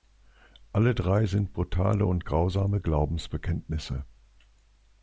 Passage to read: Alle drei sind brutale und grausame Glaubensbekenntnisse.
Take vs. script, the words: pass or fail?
pass